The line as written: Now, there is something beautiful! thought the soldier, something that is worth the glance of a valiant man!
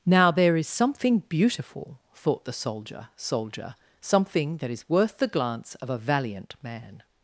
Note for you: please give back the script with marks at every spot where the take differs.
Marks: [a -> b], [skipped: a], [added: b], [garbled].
Now, there is something beautiful! thought the soldier, [added: soldier] something that is worth the glance of a valiant man!